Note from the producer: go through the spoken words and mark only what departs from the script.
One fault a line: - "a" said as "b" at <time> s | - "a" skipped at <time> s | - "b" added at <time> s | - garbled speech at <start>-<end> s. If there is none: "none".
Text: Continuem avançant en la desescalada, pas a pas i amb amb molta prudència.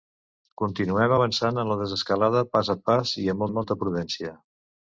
none